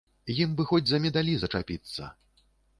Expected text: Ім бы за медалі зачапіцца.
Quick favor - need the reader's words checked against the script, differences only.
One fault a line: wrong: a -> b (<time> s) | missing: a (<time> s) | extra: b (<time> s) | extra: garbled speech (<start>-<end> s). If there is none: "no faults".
extra: хоць (0.7 s)